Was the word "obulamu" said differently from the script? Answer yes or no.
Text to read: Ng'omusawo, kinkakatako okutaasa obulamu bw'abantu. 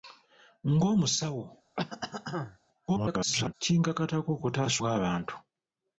yes